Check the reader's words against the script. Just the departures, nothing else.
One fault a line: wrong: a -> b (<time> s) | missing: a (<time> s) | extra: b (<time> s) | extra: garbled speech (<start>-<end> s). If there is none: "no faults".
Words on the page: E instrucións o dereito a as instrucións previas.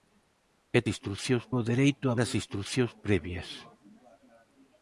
no faults